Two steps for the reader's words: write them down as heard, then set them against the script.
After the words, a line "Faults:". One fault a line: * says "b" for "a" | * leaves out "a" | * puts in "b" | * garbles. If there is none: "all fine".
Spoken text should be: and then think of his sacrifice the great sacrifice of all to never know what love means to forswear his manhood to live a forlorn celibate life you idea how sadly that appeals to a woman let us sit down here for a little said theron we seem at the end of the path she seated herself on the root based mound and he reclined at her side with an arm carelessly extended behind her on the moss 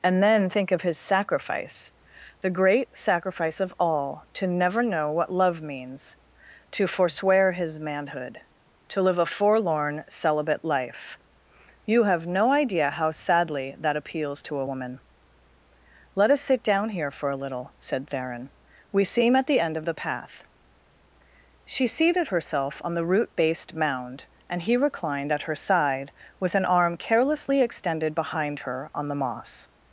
and then think of his sacrifice the great sacrifice of all to never know what love means to forswear his manhood to live a forlorn celibate life you have no idea how sadly that appeals to a woman let us sit down here for a little said theron we seem at the end of the path she seated herself on the root based mound and he reclined at her side with an arm carelessly extended behind her on the moss
Faults:
* puts in "have no"